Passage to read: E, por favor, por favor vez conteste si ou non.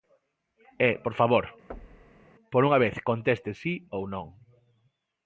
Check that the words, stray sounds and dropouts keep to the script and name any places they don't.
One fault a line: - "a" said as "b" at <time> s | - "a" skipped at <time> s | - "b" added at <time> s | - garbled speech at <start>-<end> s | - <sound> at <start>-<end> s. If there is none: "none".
- thud at 1.7-2.3 s
- "favor" said as "unha" at 2.7 s